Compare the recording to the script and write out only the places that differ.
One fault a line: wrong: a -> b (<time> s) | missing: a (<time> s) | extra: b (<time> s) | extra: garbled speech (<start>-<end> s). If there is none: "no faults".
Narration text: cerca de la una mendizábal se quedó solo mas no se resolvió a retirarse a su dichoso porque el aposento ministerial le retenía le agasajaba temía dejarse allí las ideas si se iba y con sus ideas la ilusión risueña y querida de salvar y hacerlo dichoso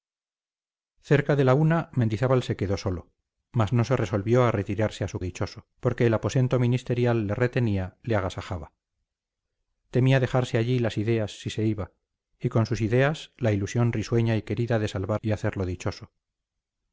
no faults